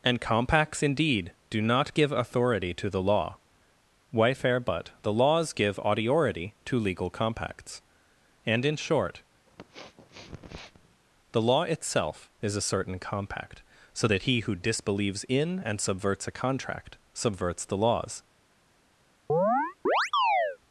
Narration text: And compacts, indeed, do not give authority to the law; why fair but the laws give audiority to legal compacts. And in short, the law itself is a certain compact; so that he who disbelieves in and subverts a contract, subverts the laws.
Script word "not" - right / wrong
right